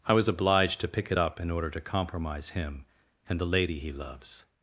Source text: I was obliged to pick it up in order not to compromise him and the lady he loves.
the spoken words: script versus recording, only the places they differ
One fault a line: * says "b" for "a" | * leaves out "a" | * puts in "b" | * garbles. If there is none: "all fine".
* leaves out "not"